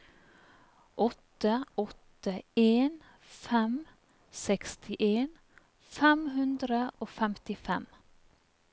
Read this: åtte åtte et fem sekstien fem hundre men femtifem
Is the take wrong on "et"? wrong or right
wrong